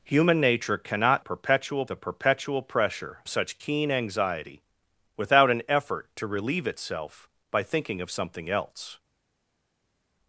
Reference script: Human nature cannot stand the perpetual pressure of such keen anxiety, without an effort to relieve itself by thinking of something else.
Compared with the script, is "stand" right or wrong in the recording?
wrong